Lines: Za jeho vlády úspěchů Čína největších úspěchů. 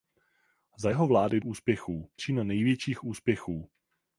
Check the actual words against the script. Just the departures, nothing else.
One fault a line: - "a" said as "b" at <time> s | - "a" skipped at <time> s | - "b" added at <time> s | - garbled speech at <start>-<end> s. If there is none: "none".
none